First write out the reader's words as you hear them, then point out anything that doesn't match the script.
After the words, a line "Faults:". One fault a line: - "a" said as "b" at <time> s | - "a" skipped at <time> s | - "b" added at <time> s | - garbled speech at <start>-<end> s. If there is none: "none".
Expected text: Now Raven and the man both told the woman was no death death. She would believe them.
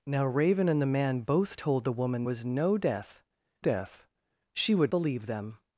Now Raven and the man both told the woman was no death death. She would believe them.
Faults:
none